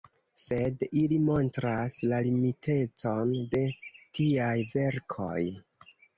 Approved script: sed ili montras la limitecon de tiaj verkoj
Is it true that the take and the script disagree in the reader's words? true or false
false